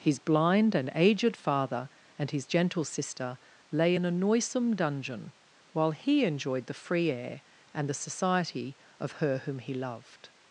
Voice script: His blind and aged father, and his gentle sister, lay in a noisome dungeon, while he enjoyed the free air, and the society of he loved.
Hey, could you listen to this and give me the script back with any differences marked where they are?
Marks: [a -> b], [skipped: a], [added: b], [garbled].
His blind and aged father, and his gentle sister, lay in a noisome dungeon, while he enjoyed the free air, and the society of [added: her whom] he loved.